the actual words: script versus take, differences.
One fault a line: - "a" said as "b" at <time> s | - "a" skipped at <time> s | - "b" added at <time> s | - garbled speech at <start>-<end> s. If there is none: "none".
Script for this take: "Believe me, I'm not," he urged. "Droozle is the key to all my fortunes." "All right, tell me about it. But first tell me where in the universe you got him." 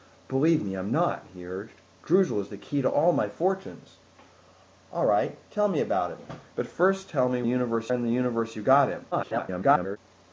- "where" said as "universe" at 7.5 s
- garbled speech at 9.1-10.0 s